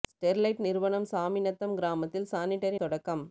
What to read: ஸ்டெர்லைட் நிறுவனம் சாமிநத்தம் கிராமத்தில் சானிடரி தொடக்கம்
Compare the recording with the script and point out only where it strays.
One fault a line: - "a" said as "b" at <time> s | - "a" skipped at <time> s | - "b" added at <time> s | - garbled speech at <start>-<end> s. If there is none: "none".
none